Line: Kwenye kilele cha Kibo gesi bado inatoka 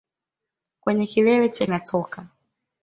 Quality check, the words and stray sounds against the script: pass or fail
fail